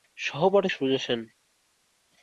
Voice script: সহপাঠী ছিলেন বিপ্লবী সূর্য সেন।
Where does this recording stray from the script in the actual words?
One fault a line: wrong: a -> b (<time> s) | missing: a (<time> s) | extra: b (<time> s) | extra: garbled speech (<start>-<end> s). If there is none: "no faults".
missing: ছিলেন বিপ্লবী (0.7 s)